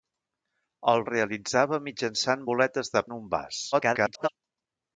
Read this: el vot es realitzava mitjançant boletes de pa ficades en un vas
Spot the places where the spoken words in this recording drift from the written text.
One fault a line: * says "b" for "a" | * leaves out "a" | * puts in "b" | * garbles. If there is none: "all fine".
* leaves out "vot"
* leaves out "pa ficades"
* garbles